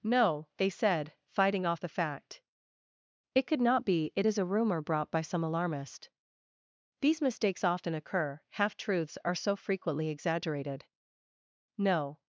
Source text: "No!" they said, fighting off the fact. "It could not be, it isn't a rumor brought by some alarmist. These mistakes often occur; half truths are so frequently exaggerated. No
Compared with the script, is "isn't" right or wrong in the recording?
wrong